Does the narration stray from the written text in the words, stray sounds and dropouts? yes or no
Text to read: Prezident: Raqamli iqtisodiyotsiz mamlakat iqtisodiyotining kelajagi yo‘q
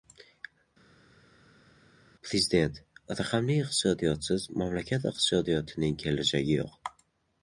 no